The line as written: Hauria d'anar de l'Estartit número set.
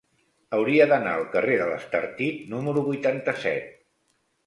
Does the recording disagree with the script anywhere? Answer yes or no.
yes